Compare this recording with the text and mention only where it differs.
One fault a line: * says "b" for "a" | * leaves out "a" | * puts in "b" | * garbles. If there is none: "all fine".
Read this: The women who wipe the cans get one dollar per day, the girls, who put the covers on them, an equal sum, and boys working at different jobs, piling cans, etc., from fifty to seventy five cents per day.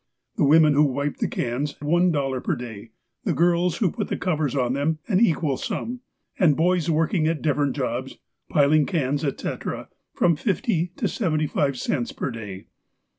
* leaves out "get"